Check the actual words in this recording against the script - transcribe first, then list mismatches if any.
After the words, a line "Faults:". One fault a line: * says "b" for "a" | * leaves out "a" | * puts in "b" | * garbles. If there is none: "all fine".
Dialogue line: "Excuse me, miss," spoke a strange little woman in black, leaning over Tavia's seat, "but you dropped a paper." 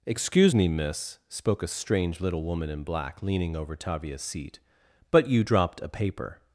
"Excuse me, miss," spoke a strange little woman in black, leaning over Tavia's seat, "but you dropped a paper."
Faults:
all fine